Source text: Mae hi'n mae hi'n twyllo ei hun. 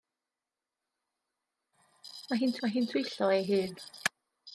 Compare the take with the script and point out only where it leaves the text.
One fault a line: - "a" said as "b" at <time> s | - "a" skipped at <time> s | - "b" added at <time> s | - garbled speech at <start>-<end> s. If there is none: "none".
none